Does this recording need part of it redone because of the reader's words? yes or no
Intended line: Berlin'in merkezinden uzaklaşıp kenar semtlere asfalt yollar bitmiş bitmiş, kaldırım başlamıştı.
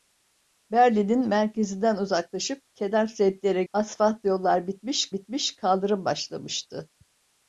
no